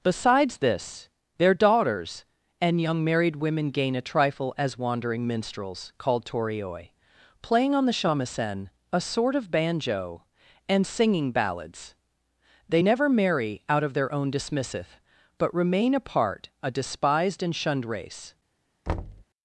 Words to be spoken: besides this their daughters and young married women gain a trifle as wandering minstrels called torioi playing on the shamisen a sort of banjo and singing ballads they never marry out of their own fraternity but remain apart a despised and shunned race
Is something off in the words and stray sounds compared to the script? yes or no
yes